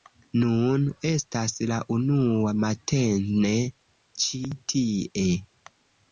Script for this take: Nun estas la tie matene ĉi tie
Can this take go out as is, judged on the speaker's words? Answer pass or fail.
fail